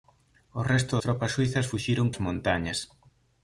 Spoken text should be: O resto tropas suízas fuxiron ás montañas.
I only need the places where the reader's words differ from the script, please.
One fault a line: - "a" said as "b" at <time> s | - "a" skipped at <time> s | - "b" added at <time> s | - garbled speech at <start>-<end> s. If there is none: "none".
none